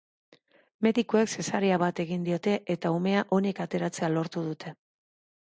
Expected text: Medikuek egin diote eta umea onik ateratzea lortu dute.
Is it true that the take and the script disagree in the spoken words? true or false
true